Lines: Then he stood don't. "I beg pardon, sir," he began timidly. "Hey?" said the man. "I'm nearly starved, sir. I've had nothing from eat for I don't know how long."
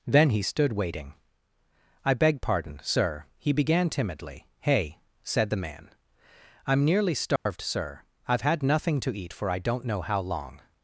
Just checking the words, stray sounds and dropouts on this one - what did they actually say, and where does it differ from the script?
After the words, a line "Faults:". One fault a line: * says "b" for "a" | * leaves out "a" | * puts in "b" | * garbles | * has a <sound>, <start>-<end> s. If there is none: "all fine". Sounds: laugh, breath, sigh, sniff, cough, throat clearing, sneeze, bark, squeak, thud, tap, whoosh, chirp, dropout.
Then he stood waiting. "I beg pardon, sir," he began timidly. "Hey?" said the man. "I'm nearly starved, sir. I've had nothing to eat for I don't know how long."
Faults:
* says "waiting" for "don't"
* has a dropout, 7.4-7.5 s
* says "to" for "from"